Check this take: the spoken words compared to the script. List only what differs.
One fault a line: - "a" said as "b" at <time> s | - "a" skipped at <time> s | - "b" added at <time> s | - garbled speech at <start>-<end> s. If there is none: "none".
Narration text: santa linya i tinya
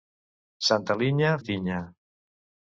none